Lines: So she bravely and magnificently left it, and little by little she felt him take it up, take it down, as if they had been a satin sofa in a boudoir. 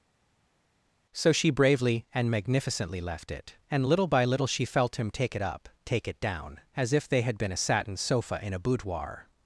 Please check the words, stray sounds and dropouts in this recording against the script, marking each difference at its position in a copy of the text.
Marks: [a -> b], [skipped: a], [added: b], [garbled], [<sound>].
So she bravely and magnificently left it, and little by little she felt him take it up, take it down, as if they had been a satin sofa in a boudoir.